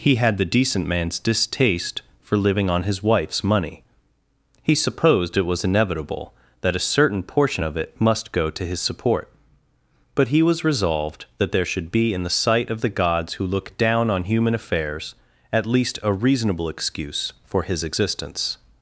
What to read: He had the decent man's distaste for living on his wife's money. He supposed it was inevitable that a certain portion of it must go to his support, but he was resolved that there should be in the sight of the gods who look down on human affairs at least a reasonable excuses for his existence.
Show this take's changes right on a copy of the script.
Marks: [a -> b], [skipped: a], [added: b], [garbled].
He had the decent man's distaste for living on his wife's money. He supposed it was inevitable that a certain portion of it must go to his support, but he was resolved that there should be in the sight of the gods who look down on human affairs at least a reasonable [excuses -> excuse] for his existence.